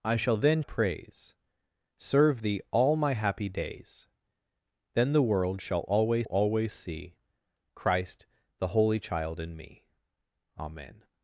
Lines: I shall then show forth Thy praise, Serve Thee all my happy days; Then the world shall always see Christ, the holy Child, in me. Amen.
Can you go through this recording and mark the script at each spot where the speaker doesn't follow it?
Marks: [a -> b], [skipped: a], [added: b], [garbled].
I shall then [skipped: show forth Thy] praise, Serve Thee all my happy days; Then the world shall always [added: always] see Christ, the holy Child, in me. Amen.